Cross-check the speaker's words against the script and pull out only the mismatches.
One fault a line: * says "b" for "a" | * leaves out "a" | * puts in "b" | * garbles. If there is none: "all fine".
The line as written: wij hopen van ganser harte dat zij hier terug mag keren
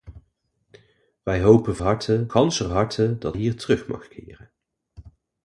* says "harte" for "van"
* leaves out "zij"